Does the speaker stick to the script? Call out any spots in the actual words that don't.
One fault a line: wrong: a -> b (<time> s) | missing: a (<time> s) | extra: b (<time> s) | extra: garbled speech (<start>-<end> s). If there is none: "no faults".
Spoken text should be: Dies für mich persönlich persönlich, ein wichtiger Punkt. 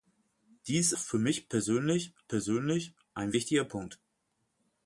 no faults